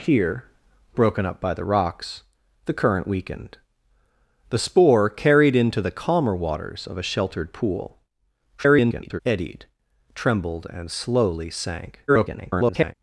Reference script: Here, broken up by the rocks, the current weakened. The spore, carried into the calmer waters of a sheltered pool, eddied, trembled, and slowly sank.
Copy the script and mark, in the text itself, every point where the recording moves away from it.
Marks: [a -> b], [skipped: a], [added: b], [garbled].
Here, broken up by the rocks, the current weakened. The spore, carried into the calmer waters of a sheltered pool, [garbled] eddied, trembled, and slowly sank. [garbled]